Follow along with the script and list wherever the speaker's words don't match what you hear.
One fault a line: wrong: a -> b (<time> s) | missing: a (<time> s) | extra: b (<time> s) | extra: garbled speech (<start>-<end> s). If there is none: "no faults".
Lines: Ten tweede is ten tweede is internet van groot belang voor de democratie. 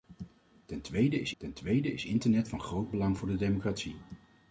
no faults